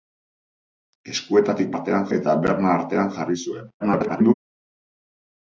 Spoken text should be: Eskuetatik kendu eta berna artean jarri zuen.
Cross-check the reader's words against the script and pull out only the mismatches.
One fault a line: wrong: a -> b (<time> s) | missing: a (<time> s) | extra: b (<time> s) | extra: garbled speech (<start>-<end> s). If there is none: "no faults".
wrong: kendu -> artean (1.7 s)
extra: garbled speech (3.8-4.3 s)